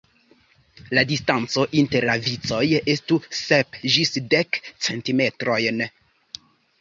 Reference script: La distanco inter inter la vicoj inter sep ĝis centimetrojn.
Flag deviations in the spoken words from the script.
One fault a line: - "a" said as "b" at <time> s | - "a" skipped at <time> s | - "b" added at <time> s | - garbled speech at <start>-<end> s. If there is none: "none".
- "inter" skipped at 2.1 s
- "inter" said as "estu" at 2.9 s
- "dek" added at 4.3 s